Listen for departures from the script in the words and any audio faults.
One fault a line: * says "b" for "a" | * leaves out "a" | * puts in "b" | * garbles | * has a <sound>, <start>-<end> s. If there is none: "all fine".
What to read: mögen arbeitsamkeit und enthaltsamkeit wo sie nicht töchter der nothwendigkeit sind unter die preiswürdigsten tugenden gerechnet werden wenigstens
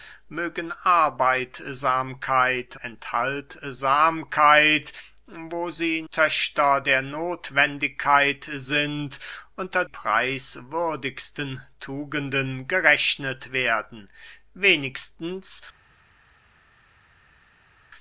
* leaves out "und"
* leaves out "nicht"
* leaves out "die"